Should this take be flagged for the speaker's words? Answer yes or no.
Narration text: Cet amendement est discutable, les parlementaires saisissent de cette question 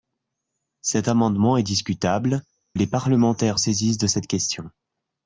no